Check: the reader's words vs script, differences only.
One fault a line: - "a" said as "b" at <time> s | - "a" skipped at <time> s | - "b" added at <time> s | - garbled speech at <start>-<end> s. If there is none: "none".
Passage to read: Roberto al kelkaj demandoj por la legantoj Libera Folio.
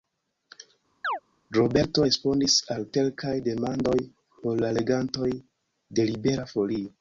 - "respondis" added at 2.1 s
- "de" added at 6.0 s